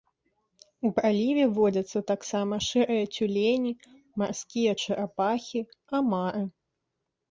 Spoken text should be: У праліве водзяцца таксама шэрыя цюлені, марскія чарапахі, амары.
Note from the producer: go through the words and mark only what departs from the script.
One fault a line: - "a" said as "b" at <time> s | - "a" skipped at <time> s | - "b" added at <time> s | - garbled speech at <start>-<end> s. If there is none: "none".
none